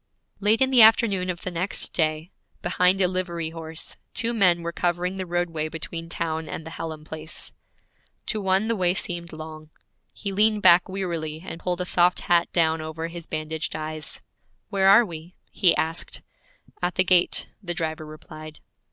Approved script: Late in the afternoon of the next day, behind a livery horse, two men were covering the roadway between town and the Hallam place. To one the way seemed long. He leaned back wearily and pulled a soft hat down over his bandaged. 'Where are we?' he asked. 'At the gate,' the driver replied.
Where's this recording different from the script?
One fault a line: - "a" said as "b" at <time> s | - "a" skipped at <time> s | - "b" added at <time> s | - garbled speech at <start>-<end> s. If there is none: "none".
- "eyes" added at 13.7 s